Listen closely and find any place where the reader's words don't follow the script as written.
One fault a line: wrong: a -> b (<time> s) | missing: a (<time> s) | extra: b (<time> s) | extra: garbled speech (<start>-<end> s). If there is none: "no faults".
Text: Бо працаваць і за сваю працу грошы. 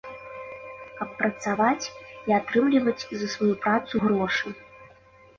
wrong: Бо -> Каб (1.0 s)
extra: атрымліваць (2.4 s)